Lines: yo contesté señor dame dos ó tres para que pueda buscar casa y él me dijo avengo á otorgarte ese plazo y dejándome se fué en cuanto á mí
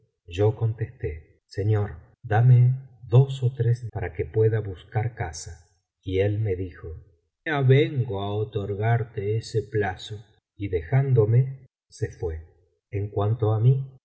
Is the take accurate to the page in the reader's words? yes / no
yes